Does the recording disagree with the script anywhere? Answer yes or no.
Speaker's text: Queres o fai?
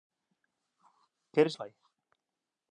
no